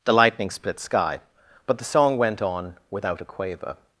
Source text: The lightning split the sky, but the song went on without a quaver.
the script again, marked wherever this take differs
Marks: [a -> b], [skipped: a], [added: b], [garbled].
The lightning split [skipped: the] sky, but the song went on without a quaver.